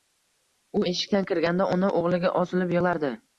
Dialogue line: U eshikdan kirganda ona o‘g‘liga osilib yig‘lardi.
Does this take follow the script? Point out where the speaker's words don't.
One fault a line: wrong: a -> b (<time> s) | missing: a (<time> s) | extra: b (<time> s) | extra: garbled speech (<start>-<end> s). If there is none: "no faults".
no faults